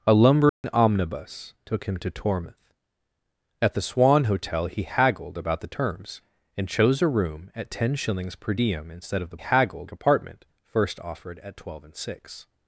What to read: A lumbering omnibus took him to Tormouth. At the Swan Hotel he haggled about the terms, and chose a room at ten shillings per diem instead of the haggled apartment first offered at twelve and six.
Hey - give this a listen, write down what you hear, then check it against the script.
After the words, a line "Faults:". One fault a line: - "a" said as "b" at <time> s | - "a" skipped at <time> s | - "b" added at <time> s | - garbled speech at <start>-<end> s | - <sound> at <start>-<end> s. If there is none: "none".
A lumbering omnibus took him to Tormouth. At the Swan Hotel he haggled about the terms, and chose a room at ten shillings per diem instead of the haggled apartment first offered at twelve and six.
Faults:
- dropout at 0.5-0.6 s